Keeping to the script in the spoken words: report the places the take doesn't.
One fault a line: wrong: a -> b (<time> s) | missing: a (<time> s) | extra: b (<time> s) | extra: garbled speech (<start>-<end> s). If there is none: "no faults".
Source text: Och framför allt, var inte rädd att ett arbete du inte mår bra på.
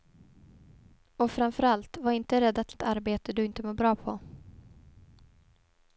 no faults